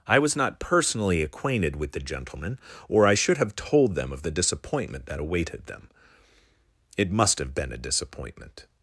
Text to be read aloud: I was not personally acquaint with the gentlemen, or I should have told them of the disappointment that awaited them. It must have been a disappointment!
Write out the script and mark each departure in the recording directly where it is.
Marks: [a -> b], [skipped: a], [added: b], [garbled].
I was not personally [acquaint -> acquainted] with the gentlemen, or I should have told them of the disappointment that awaited them. It must have been a disappointment!